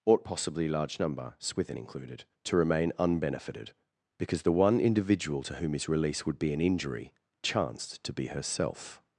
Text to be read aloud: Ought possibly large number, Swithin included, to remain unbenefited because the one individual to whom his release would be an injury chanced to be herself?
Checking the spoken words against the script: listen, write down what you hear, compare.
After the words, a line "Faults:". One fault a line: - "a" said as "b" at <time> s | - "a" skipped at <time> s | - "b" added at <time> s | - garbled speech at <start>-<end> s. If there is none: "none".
Ought possibly large number, Swithin included, to remain unbenefited because the one individual to whom his release would be an injury chanced to be herself?
Faults:
none